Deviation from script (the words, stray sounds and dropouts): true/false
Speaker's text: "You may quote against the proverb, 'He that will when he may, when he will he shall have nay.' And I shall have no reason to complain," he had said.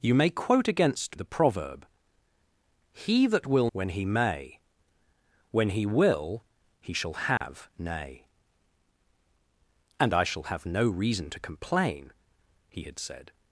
true